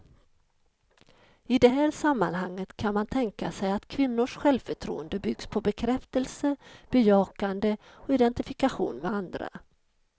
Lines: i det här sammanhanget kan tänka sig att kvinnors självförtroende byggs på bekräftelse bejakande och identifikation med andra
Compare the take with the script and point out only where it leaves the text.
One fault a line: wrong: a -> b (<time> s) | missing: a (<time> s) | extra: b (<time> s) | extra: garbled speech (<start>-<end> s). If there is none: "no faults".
extra: man (2.9 s)